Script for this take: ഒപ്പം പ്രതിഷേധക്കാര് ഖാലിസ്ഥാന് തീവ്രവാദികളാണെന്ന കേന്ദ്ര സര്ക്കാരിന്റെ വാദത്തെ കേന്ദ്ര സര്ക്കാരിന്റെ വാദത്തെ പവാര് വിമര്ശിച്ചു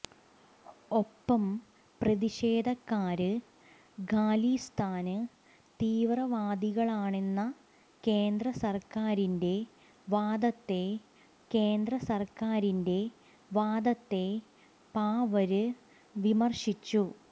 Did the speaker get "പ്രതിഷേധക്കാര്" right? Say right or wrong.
right